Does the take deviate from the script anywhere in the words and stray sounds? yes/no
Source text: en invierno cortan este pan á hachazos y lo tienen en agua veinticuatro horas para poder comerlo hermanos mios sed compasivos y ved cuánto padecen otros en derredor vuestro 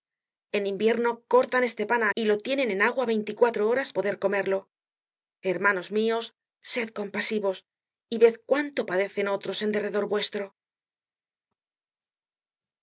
yes